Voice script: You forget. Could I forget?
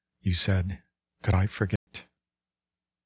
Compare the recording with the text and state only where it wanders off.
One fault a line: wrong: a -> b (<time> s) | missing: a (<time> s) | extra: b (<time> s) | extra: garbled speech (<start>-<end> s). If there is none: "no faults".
wrong: forget -> said (0.3 s)